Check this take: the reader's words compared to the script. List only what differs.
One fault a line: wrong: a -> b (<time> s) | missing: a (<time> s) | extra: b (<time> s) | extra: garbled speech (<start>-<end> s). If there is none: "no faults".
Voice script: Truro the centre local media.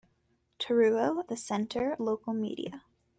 no faults